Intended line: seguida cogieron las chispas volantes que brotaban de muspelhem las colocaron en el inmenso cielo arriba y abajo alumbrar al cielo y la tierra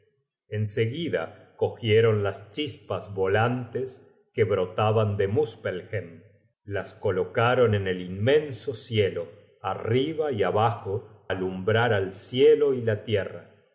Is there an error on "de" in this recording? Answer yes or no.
no